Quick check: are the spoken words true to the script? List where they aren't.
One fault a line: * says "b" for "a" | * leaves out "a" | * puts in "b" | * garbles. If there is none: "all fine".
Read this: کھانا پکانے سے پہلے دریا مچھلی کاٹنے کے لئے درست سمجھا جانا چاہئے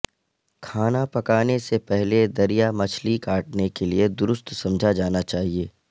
all fine